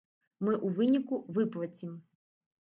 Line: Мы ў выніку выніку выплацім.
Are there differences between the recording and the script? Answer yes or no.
yes